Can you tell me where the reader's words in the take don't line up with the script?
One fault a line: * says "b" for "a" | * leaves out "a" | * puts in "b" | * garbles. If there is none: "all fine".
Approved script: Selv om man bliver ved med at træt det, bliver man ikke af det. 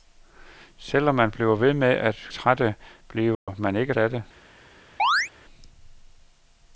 all fine